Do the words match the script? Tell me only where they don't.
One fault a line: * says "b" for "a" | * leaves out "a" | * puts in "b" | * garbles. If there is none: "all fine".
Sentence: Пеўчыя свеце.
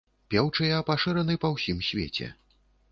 * puts in "пашыраны па ўсім"